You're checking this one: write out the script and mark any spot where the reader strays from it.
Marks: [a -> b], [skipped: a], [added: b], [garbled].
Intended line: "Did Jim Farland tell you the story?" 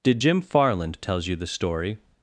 "Did Jim Farland [tell -> tells] you the story?"